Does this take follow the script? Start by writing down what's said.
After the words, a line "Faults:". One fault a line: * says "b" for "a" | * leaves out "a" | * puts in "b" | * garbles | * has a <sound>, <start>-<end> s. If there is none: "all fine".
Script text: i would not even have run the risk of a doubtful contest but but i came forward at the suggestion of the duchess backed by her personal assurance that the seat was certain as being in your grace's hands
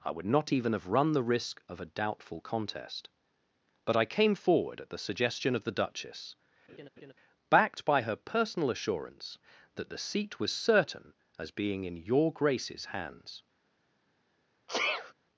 i would not even have run the risk of a doubtful contest but i came forward at the suggestion of the duchess backed by her personal assurance that the seat was certain as being in your grace's hands
Faults:
* leaves out "but"
* has a laugh, 6.7-7.1 s
* has a sneeze, 14.7-15.1 s